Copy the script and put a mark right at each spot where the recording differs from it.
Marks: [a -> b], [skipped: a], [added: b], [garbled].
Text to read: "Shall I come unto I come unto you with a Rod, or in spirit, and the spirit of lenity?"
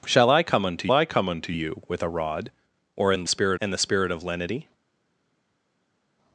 "Shall I come unto I come unto you with a Rod, or in spirit, and the spirit of lenity?"